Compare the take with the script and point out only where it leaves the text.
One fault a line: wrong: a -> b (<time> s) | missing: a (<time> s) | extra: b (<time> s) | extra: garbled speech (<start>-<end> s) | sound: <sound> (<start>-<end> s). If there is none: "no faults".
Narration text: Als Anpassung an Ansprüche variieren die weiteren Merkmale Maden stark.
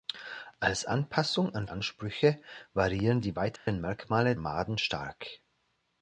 sound: dropout (3.6-3.7 s)